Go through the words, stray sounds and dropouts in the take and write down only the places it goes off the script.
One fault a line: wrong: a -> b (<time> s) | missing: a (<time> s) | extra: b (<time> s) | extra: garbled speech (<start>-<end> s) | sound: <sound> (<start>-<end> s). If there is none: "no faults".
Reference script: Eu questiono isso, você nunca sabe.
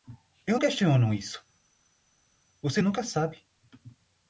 no faults